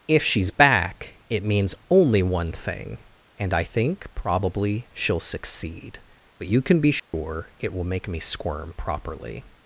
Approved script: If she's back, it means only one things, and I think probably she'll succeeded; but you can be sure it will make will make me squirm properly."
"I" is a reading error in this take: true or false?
false